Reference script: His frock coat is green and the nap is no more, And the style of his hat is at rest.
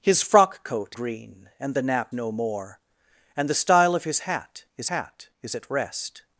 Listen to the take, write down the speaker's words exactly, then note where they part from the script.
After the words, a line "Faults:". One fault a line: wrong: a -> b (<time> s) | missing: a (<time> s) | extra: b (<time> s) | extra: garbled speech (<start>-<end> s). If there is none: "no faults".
His frock coat green and the nap no more, And the style of his hat is hat is at rest.
Faults:
missing: is (1.0 s)
missing: is (2.1 s)
extra: hat is (4.9 s)